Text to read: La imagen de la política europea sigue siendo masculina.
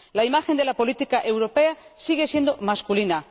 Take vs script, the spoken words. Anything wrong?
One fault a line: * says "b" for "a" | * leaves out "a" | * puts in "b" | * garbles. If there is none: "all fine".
all fine